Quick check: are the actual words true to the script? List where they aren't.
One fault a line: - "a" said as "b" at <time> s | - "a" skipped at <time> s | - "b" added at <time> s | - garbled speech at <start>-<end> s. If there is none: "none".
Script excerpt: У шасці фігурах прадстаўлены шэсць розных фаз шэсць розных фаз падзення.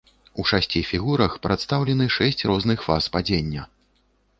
- "шэсць розных фаз" skipped at 3.1 s